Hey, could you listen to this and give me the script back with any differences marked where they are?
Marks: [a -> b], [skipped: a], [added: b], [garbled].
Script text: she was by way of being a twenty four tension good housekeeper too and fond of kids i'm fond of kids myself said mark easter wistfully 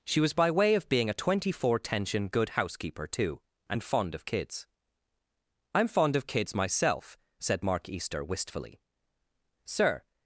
she was by way of being a twenty four tension good housekeeper too and fond of kids i'm fond of kids myself said mark easter wistfully [added: sir]